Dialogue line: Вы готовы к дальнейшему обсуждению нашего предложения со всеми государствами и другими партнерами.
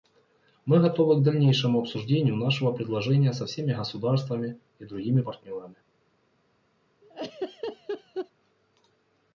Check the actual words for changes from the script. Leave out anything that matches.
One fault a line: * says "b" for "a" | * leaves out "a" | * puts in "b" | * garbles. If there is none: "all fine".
* says "Мы" for "Вы"